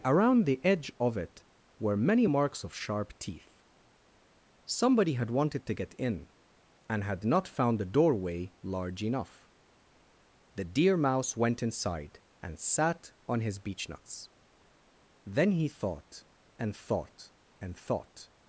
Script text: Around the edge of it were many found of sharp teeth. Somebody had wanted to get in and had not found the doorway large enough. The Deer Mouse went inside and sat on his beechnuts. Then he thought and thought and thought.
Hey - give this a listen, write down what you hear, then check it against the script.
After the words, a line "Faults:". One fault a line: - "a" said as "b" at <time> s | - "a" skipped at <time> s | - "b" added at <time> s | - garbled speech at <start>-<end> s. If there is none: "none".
Around the edge of it were many marks of sharp teeth. Somebody had wanted to get in and had not found the doorway large enough. The Deer Mouse went inside and sat on his beechnuts. Then he thought and thought and thought.
Faults:
- "found" said as "marks" at 2.2 s